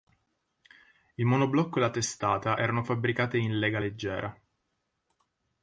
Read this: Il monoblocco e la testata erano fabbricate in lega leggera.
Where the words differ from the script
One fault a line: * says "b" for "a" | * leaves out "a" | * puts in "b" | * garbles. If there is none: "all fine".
all fine